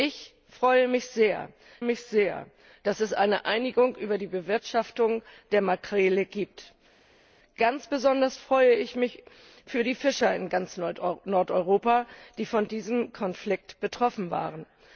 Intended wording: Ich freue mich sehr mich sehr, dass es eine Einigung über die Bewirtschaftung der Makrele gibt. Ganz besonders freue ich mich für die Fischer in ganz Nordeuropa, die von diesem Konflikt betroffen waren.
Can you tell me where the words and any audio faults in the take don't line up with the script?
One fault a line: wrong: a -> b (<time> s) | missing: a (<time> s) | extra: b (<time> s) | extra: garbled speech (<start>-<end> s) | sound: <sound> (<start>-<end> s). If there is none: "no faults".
no faults